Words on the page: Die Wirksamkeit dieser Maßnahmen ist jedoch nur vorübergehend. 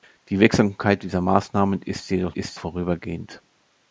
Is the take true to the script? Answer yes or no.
no